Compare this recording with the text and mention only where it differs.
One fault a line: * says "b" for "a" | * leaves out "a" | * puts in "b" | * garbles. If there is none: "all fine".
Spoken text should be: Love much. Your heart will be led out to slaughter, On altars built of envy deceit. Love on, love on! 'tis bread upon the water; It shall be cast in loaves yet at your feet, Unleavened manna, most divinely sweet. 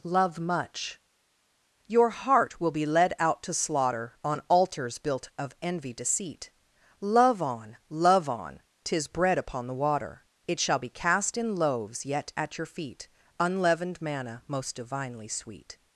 all fine